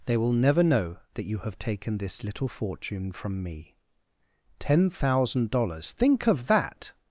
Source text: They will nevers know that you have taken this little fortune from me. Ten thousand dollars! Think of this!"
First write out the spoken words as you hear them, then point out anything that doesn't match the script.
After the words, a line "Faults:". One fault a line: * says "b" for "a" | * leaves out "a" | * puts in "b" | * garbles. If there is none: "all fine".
They will never know that you have taken this little fortune from me. Ten thousand dollars! Think of that!"
Faults:
* says "never" for "nevers"
* says "that" for "this"